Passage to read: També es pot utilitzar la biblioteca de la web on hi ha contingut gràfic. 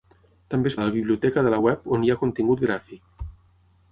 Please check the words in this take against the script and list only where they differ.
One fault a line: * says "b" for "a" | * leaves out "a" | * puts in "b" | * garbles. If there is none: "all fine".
* leaves out "pot utilitzar"